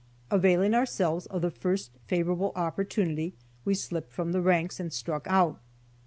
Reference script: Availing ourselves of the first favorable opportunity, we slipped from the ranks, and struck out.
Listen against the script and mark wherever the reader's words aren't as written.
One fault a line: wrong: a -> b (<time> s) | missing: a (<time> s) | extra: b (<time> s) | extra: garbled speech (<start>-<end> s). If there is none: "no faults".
no faults